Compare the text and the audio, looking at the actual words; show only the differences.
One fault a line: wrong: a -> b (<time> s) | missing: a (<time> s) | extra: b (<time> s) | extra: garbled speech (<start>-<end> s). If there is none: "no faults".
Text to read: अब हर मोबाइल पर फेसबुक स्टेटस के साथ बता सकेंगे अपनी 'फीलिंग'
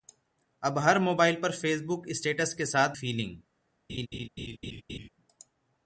missing: बता सकेंगे अपनी (3.0 s)